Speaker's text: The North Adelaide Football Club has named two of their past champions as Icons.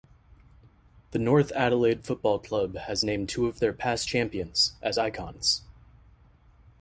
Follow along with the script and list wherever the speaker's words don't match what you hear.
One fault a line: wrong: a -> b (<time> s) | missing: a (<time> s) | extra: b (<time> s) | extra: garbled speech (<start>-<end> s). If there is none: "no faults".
no faults